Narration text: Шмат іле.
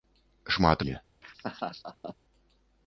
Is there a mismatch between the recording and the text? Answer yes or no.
no